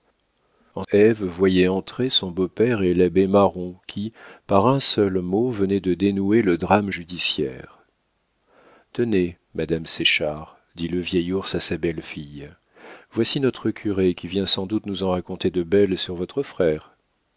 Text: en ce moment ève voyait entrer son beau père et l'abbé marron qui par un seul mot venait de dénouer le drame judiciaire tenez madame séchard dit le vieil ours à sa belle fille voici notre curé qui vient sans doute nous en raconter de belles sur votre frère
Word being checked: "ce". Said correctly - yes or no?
no